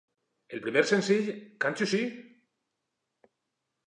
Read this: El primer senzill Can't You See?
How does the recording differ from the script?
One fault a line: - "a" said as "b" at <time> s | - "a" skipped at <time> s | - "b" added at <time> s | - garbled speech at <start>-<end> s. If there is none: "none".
none